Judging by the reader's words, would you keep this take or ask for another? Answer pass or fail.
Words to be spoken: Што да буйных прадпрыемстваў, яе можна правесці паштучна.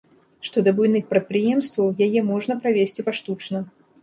pass